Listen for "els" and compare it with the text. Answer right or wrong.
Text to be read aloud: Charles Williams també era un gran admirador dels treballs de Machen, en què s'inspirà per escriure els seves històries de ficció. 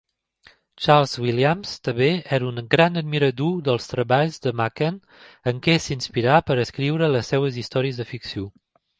wrong